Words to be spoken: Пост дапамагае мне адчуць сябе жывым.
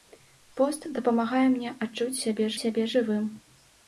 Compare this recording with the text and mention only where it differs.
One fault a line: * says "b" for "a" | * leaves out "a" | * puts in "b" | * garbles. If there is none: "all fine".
* puts in "сябе"